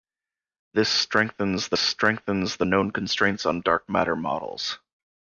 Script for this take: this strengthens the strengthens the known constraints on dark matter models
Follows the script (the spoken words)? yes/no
yes